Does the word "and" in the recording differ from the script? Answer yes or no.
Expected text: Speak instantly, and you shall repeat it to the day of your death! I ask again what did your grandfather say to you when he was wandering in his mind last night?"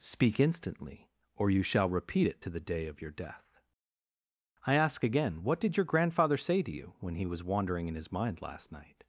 yes